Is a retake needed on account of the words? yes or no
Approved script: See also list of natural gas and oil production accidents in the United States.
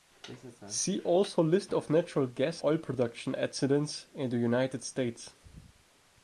yes